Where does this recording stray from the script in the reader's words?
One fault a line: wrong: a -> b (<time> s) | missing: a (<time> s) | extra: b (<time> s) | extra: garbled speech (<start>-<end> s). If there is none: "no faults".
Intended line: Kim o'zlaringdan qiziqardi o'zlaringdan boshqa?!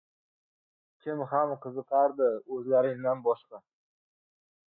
wrong: o'zlaringdan -> ham (1.3 s)